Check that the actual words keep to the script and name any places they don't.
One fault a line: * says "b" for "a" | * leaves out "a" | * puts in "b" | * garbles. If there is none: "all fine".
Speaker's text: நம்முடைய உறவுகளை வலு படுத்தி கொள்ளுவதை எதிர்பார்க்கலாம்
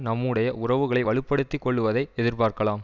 all fine